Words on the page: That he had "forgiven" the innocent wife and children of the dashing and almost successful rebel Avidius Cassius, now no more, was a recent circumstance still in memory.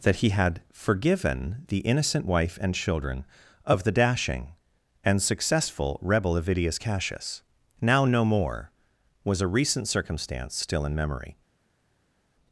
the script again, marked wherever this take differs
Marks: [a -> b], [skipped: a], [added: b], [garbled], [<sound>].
That he had "forgiven" the innocent wife and children of the dashing and [skipped: almost] successful rebel Avidius Cassius, now no more, was a recent circumstance still in memory.